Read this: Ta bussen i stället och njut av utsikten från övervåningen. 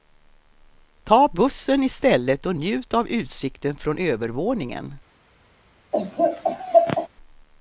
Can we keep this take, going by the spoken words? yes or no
yes